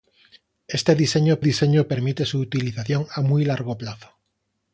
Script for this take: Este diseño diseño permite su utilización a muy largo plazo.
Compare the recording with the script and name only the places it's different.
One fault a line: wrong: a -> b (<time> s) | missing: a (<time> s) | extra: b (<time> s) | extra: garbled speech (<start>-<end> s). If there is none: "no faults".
no faults